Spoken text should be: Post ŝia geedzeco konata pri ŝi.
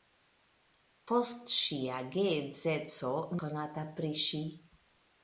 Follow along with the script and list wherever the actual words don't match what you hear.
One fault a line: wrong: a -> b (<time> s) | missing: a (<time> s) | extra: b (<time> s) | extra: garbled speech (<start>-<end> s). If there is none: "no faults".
no faults